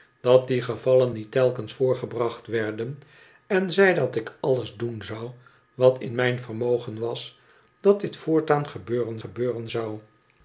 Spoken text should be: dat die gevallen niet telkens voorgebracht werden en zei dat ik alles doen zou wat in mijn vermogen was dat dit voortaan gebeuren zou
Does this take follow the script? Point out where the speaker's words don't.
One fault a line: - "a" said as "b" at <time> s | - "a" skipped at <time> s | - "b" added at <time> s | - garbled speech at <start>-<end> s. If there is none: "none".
- "gebeuren" added at 9.2 s